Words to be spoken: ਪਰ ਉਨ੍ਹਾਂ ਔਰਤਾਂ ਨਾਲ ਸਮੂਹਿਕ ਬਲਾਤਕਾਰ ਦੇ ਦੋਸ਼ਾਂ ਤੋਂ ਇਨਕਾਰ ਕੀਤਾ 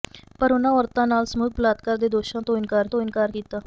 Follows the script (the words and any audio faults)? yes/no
no